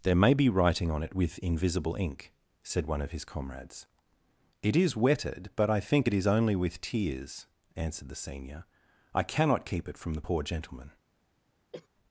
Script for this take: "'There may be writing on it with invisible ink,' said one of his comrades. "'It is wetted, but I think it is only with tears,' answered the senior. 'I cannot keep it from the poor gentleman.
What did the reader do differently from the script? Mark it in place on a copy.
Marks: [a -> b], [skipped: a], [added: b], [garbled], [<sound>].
"'There may be writing on it with invisible ink,' said one of his comrades. "'It is wetted, but I think it is only with tears,' answered the senior. 'I cannot keep it from the poor gentleman. [cough]